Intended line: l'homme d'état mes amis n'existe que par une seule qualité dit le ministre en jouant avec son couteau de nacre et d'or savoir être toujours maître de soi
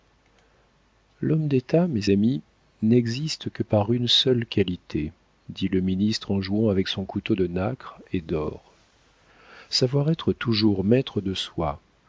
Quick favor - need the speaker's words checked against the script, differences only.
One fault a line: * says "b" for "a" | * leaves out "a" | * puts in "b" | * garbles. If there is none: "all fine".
all fine